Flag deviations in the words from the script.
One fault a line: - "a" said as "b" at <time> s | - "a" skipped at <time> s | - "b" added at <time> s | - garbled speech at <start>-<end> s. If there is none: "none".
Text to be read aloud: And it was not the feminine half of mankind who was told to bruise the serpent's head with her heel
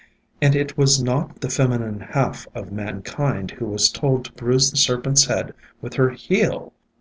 none